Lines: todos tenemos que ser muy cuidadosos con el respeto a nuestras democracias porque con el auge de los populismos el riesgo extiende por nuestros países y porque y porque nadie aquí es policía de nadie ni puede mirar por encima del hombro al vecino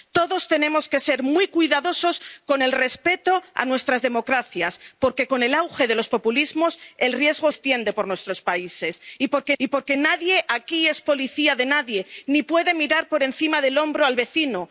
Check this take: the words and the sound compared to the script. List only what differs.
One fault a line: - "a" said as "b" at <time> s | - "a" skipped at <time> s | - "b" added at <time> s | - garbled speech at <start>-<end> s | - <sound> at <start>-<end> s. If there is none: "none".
none